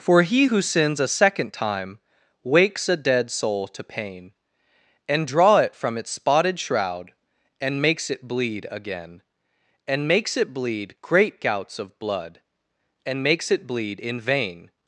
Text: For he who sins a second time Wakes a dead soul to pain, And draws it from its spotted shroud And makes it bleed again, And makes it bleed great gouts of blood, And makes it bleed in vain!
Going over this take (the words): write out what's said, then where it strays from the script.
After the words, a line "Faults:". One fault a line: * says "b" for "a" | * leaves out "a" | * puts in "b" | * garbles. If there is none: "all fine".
For he who sins a second time Wakes a dead soul to pain, And draw it from its spotted shroud And makes it bleed again, And makes it bleed great gouts of blood, And makes it bleed in vain!
Faults:
* says "draw" for "draws"